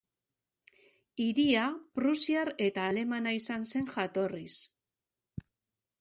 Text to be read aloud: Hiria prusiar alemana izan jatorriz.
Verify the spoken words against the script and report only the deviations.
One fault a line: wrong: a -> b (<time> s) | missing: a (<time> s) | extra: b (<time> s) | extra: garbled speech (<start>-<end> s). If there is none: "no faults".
extra: eta (2.7 s)
extra: zen (3.7 s)